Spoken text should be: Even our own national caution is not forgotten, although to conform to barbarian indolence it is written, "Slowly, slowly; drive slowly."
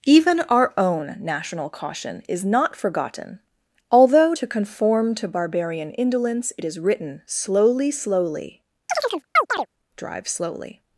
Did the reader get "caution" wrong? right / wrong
right